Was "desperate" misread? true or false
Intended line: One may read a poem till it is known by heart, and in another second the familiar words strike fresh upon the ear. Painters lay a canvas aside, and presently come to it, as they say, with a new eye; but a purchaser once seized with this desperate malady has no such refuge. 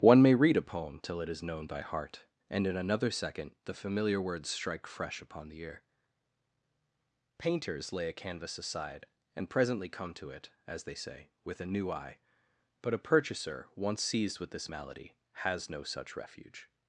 true